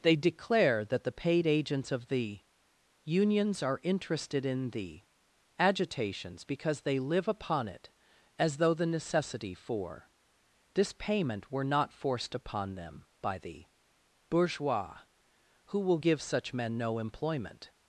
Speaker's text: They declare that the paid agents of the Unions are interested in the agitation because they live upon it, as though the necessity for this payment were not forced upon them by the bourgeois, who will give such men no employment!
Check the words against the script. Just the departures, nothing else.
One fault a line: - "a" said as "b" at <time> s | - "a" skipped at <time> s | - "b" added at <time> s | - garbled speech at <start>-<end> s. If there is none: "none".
- "agitation" said as "agitations" at 5.6 s